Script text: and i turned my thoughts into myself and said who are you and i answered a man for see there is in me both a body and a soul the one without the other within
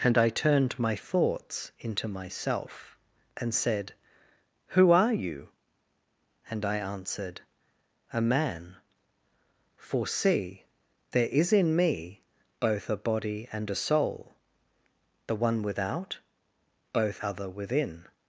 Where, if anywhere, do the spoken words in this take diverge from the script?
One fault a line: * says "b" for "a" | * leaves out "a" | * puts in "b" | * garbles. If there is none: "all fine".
* says "both" for "the"